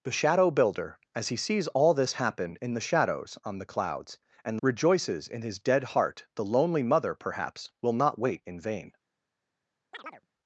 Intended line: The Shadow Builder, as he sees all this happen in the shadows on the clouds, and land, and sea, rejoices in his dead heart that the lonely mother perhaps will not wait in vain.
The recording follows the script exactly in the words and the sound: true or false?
false